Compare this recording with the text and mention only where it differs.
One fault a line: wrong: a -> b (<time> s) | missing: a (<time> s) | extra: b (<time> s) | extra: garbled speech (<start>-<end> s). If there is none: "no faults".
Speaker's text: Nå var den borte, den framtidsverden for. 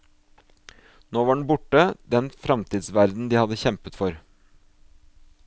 extra: de hadde kjempet (3.3 s)